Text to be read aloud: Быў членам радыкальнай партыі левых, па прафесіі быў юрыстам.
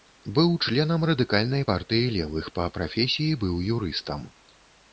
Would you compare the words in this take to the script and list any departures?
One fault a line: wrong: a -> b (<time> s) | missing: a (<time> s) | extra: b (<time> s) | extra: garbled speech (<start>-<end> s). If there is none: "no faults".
no faults